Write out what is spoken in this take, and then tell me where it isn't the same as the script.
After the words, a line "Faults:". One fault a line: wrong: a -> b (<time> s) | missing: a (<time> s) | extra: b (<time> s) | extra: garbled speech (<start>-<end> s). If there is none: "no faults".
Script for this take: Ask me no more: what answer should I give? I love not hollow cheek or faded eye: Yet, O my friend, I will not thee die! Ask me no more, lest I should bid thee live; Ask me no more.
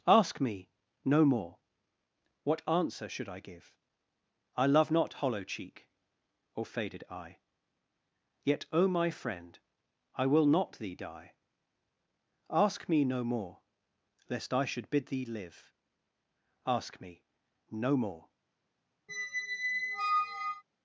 Ask me no more: what answer should I give? I love not hollow cheek or faded eye: Yet, O my friend, I will not thee die! Ask me no more, lest I should bid thee live; Ask me no more.
Faults:
no faults